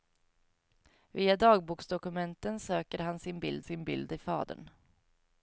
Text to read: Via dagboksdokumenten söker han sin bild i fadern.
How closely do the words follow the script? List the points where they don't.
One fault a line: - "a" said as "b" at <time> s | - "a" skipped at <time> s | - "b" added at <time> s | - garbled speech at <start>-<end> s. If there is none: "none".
- "sin bild" added at 3.6 s